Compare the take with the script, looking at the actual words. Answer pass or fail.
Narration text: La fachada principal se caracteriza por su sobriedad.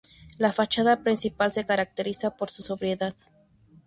pass